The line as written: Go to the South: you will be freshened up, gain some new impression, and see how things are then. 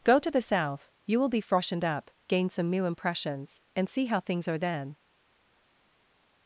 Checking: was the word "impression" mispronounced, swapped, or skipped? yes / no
yes